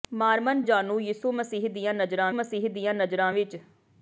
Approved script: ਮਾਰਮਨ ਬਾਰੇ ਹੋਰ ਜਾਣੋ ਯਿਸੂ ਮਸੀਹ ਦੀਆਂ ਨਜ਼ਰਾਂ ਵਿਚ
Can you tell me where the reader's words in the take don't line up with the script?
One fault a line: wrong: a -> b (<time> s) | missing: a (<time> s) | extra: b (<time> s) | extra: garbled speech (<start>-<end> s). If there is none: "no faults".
wrong: ਬਾਰੇ ਹੋਰ ਜਾਣੋ ਯਿਸੂ -> ਜਾਣੋ ਯਿਸੂ ਮਸੀਹ ਦੀਆਂ ਨਜ਼ਰਾਂ (0.6 s)